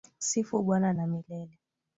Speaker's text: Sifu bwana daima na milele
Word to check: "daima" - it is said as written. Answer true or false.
false